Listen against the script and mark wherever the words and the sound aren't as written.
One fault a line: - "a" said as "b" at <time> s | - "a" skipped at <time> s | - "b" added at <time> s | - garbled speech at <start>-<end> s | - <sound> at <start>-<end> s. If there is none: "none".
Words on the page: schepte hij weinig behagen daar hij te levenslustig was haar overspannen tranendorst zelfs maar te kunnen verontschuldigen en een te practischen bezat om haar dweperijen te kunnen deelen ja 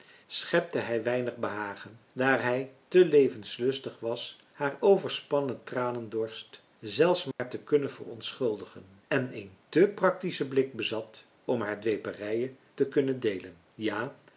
- dropout at 7.3-7.4 s
- "blik" added at 10.5 s